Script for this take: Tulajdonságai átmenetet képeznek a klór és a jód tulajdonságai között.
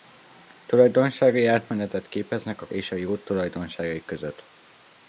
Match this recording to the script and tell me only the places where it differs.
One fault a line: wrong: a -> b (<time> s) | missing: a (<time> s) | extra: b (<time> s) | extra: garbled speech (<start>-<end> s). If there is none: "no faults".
missing: klór (2.7 s)